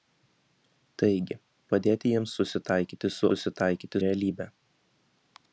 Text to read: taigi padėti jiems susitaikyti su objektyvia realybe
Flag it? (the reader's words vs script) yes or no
yes